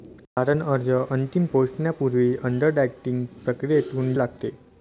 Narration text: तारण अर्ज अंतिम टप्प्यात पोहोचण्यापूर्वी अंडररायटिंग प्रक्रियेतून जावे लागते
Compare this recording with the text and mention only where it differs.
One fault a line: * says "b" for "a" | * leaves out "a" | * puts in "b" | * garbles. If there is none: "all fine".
* leaves out "टप्प्यात"
* leaves out "जावे"